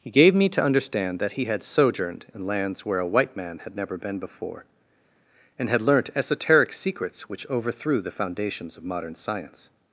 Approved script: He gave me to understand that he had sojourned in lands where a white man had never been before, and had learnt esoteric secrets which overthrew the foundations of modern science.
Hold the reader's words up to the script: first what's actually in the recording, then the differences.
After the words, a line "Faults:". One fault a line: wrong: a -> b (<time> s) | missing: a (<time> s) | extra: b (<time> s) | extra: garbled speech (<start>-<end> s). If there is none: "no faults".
He gave me to understand that he had sojourned in lands where a white man had never been before, and had learnt esoteric secrets which overthrew the foundations of modern science.
Faults:
no faults